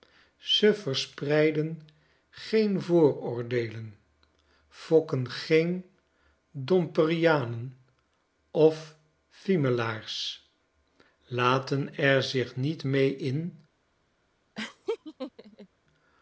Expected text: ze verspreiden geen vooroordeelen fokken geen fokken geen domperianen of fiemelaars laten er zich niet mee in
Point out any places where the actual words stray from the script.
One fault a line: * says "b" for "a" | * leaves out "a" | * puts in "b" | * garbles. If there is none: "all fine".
* leaves out "fokken geen"